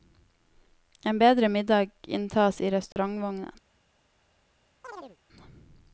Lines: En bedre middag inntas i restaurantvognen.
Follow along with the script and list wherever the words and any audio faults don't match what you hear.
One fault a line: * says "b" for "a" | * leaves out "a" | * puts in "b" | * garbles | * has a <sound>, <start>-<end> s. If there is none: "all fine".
* has a dropout, 2.9-3.0 s
* has a chirp, 4.8-5.2 s